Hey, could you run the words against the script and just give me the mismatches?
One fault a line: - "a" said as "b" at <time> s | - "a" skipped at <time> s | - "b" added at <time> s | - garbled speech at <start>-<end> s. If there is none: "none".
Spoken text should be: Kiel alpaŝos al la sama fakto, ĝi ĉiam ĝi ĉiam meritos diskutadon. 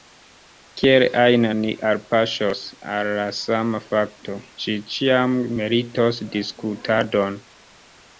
- "ajn ni" added at 1.2 s
- "ĝi ĉiam" skipped at 5.4 s